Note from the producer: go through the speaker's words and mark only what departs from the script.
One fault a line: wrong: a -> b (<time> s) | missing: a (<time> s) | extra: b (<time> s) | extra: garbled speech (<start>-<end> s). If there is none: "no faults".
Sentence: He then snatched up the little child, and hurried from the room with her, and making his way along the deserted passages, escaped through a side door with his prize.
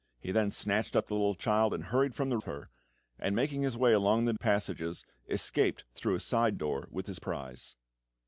missing: room with (2.4 s)
missing: deserted (4.3 s)